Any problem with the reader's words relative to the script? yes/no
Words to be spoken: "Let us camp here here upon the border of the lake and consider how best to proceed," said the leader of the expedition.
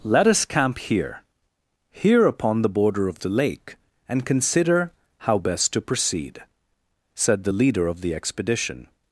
no